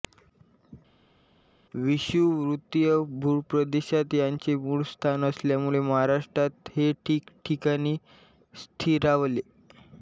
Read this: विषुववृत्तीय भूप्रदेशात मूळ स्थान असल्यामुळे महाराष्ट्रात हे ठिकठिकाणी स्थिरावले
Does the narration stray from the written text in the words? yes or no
yes